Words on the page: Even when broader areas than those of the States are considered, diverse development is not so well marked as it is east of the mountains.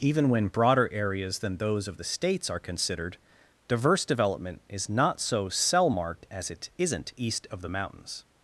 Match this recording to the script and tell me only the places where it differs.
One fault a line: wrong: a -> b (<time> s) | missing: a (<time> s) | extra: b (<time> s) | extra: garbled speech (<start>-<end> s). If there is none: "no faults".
wrong: well -> cell (5.5 s)
wrong: is -> isn't (6.8 s)